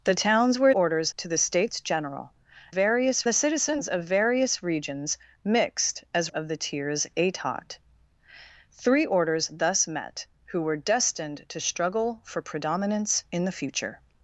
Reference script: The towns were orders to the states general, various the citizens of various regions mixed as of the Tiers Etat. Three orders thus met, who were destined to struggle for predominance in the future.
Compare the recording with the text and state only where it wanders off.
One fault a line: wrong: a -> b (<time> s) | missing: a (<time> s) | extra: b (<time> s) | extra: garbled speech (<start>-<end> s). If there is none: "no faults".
no faults